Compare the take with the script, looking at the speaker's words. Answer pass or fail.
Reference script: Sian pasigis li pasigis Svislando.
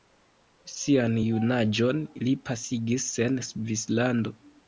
fail